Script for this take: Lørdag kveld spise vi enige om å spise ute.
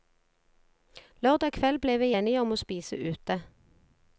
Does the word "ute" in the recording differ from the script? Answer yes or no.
no